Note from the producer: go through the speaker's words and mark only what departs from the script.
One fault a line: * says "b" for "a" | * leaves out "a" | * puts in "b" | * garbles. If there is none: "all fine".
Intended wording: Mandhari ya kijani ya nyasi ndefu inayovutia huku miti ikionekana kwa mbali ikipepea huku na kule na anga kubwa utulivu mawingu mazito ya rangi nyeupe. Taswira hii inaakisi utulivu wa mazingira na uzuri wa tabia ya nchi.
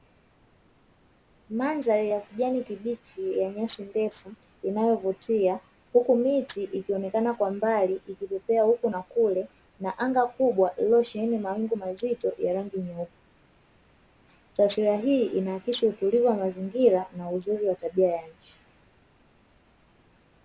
* puts in "kibichi"
* says "lililosheheni" for "utulivu"